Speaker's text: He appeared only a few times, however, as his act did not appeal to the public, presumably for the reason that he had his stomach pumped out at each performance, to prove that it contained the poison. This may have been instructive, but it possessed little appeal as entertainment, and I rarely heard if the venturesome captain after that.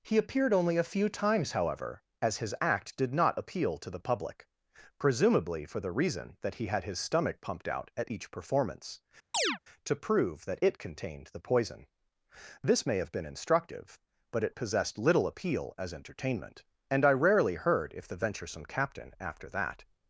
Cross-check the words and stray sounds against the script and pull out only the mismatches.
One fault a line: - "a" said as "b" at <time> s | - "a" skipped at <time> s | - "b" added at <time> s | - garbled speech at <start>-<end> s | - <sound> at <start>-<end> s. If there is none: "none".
- chirp at 9.3-9.6 s